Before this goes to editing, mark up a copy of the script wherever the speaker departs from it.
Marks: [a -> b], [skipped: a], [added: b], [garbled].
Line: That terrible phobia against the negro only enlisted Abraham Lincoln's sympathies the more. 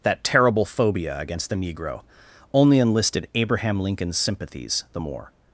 That terrible phobia against the negro only enlisted Abraham Lincoln's sympathies the more.